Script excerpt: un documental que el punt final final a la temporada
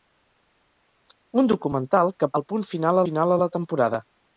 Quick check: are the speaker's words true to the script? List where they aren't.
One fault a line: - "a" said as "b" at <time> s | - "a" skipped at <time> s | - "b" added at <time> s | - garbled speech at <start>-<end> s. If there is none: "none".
none